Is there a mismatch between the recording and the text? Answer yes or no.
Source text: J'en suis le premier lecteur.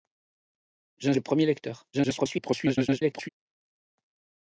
yes